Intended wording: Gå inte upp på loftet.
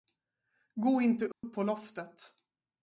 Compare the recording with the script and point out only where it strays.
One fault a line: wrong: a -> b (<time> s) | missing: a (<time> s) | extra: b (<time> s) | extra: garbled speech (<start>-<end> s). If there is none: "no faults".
no faults